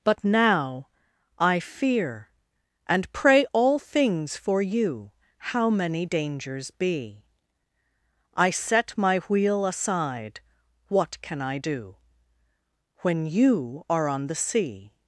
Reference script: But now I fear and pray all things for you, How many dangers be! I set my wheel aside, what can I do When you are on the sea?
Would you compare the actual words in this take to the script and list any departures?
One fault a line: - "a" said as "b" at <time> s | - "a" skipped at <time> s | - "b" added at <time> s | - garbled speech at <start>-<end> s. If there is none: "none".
none